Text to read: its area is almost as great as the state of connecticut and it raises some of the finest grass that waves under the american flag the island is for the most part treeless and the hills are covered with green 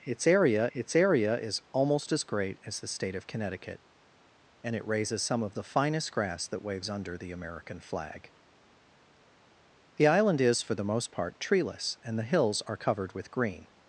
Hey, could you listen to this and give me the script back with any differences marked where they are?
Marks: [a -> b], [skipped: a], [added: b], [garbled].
its area [added: its area] is almost as great as the state of connecticut and it raises some of the finest grass that waves under the american flag the island is for the most part treeless and the hills are covered with green